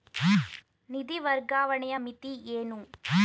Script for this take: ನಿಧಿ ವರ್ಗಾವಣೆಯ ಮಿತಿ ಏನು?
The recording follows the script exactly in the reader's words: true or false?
true